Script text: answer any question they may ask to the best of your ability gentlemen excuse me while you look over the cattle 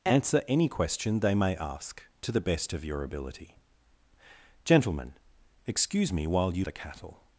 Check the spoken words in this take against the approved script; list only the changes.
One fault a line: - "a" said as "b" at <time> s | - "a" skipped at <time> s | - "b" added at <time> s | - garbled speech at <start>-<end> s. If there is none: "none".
- "look over" skipped at 6.7 s